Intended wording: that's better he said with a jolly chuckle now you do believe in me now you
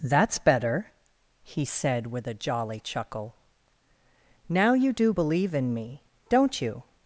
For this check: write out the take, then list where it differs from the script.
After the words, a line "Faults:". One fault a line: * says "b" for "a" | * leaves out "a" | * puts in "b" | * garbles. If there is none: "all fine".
that's better he said with a jolly chuckle now you do believe in me don't you
Faults:
* says "don't" for "now"